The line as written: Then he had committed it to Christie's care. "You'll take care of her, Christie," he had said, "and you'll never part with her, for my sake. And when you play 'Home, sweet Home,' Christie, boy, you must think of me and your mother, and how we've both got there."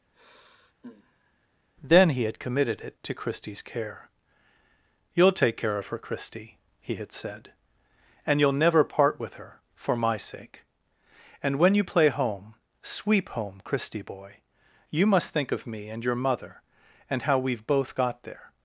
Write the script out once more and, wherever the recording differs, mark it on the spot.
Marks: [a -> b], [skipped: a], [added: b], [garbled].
Then he had committed it to Christie's care. "You'll take care of her, Christie," he had said, "and you'll never part with her, for my sake. And when you play 'Home, [sweet -> sweep] Home,' Christie, boy, you must think of me and your mother, and how we've both got there."